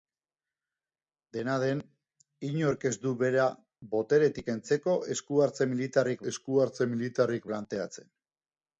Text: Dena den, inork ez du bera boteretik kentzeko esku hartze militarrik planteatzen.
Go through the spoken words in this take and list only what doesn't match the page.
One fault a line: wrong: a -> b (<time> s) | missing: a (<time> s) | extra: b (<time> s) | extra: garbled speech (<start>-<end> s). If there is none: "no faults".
extra: esku hartze militarrik (6.3 s)